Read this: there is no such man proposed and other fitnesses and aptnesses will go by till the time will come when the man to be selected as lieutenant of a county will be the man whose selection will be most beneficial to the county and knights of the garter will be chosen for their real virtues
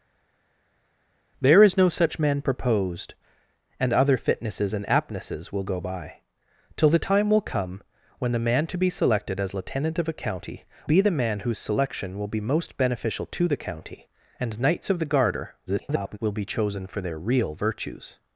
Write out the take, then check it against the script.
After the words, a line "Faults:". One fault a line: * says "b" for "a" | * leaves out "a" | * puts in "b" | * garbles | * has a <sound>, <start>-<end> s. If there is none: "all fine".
there is no such man proposed and other fitnesses and aptnesses will go by till the time will come when the man to be selected as lieutenant of a county be the man whose selection will be most beneficial to the county and knights of the garter [garbled] will be chosen for their real virtues
Faults:
* leaves out "will"
* garbles